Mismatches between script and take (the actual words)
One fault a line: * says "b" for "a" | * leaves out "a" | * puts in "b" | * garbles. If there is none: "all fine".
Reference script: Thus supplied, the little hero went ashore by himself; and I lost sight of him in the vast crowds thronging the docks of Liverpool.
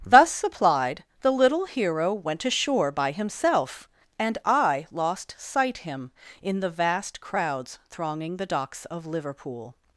* leaves out "of"